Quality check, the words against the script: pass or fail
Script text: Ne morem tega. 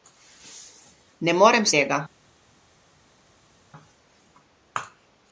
pass